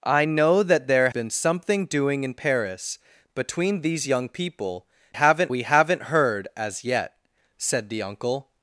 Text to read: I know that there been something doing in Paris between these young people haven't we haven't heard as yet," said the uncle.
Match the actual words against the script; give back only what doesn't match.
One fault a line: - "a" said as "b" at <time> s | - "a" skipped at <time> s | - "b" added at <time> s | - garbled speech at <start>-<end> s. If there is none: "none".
none